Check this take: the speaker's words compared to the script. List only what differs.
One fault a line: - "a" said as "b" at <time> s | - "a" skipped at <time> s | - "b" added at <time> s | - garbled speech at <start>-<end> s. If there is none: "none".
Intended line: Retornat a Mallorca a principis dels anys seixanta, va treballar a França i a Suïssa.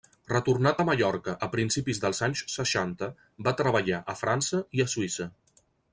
none